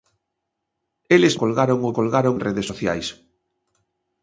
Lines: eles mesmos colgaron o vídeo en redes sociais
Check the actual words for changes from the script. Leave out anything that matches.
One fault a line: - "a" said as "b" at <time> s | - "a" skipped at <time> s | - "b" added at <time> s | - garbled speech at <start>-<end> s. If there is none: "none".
- "mesmos" skipped at 1.4 s
- "vídeo" said as "colgaron" at 2.0 s